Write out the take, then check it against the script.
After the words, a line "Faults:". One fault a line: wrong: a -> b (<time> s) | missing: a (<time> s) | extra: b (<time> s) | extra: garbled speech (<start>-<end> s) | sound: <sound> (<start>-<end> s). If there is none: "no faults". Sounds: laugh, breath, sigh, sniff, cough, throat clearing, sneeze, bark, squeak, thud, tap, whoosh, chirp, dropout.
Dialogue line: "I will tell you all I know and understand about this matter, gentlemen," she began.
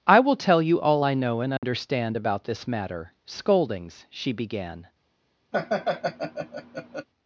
"I will tell you all I know and understand about this matter, scoldings," she began.
Faults:
sound: dropout (1.6-1.6 s)
wrong: gentlemen -> scoldings (3.2 s)
sound: laugh (5.5-7.1 s)